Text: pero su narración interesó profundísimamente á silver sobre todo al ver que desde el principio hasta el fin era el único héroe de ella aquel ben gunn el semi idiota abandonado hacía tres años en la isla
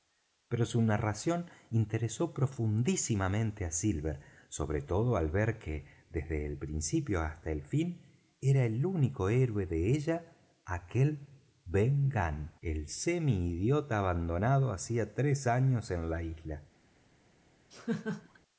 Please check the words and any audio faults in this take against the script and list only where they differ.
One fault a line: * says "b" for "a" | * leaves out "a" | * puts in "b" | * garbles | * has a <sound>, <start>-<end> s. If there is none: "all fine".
* has a laugh, 17.7-18.4 s